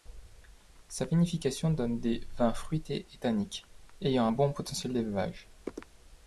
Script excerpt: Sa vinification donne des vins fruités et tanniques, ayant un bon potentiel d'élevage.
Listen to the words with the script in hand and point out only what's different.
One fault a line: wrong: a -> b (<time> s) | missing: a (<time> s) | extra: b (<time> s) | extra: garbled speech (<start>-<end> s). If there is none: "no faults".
no faults